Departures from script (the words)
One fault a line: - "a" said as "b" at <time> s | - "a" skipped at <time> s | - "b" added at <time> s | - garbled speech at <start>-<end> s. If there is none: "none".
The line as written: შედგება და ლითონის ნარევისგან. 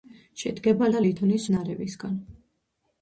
none